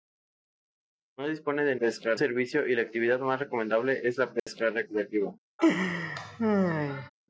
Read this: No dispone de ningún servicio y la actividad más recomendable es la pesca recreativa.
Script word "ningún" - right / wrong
wrong